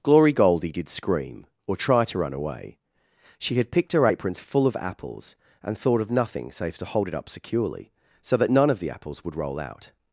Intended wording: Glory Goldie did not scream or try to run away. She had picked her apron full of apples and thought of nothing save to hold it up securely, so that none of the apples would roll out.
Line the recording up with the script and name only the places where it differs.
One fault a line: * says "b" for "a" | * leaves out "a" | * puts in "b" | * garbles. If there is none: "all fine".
* leaves out "not"
* says "aprons" for "apron"